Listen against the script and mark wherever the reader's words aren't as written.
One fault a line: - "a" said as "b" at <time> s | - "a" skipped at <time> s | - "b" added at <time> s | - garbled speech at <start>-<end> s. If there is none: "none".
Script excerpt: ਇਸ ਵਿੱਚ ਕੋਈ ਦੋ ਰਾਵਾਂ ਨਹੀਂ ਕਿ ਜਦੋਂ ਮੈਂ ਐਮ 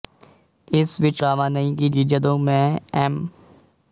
- "ਕੋਈ ਦੋ" skipped at 1.2 s
- "ਕਿ" added at 1.9 s